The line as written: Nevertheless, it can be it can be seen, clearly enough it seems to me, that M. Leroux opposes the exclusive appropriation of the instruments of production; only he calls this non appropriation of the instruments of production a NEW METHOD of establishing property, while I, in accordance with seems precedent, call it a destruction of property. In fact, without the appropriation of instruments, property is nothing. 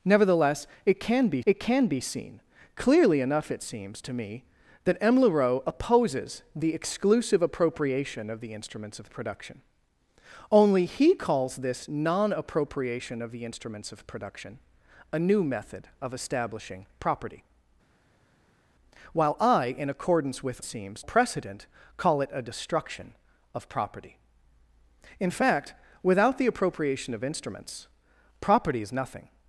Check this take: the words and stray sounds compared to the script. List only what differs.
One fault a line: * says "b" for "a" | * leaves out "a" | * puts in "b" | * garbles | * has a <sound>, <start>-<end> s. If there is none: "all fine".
all fine